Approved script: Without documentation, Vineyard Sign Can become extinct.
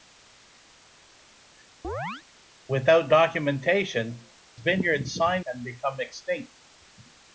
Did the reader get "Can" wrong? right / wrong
right